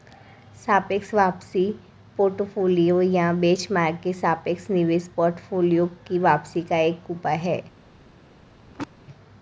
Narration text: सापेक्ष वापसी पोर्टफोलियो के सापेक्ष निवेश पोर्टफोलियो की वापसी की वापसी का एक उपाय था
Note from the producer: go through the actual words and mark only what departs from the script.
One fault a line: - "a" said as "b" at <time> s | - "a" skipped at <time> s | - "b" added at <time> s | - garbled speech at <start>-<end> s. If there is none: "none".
- "या बेंचमार्क" added at 3.0 s
- "की वापसी" skipped at 6.6 s
- "था" said as "है" at 7.4 s